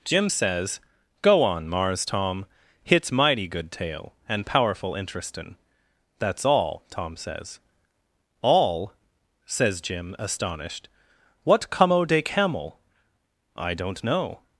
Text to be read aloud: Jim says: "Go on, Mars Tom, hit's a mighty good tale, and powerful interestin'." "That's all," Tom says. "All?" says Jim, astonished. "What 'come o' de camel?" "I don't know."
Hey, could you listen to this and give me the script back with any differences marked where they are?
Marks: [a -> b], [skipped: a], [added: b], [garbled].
Jim says: "Go on, Mars Tom, hit's [skipped: a] mighty good tale, and powerful interestin'." "That's all," Tom says. "All?" says Jim, astonished. "What 'come o' de camel?" "I don't know."